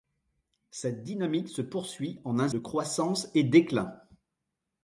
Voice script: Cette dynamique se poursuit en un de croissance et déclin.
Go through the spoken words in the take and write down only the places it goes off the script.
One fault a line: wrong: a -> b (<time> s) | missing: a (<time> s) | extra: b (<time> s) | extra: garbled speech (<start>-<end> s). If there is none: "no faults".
no faults